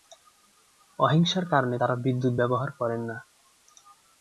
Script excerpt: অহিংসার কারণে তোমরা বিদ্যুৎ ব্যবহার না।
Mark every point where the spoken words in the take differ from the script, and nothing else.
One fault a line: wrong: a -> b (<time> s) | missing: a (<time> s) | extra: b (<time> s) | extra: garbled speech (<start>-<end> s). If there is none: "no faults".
wrong: তোমরা -> তারা (1.7 s)
extra: করেন (2.7 s)